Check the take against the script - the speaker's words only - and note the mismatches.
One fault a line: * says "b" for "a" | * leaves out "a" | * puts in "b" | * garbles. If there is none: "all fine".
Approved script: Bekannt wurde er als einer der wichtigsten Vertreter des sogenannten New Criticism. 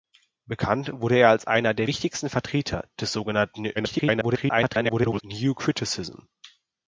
* garbles